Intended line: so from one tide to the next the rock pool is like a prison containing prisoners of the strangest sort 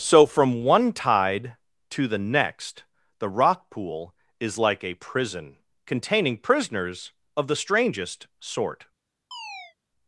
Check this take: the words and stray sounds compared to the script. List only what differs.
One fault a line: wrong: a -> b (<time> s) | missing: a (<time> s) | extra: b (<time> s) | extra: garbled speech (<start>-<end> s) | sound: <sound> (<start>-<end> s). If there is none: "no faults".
sound: chirp (9.3-9.8 s)